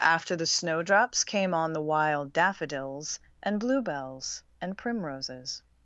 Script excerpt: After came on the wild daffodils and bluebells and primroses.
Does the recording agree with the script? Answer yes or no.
no